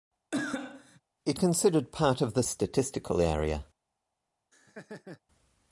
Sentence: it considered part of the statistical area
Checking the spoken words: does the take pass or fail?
pass